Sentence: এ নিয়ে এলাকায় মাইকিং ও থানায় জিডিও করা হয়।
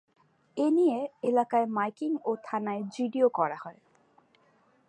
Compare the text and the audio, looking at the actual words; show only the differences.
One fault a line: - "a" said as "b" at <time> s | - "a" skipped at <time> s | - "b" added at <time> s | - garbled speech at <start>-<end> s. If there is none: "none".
none